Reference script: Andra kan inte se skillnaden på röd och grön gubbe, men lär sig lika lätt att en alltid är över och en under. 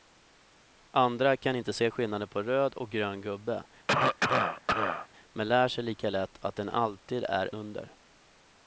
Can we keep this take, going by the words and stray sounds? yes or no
no